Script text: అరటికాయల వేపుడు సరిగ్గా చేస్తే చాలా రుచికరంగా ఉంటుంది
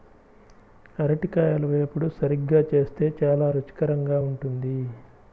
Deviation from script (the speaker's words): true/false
false